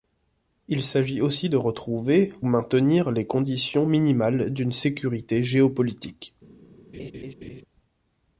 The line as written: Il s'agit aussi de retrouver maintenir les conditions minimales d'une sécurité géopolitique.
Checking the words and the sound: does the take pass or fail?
fail